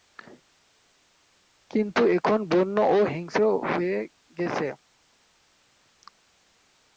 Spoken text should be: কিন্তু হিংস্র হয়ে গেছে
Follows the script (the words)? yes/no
no